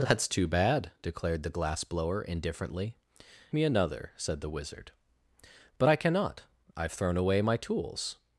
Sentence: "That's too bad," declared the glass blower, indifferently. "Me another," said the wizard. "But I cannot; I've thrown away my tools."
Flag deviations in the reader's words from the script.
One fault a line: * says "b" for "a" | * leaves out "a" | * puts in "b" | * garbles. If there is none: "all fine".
all fine